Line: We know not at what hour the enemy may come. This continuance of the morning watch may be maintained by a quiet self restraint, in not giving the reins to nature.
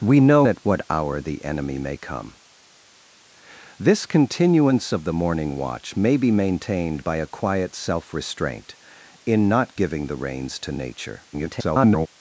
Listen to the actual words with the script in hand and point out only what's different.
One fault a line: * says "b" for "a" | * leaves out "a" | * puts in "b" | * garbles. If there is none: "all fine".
* leaves out "not"
* garbles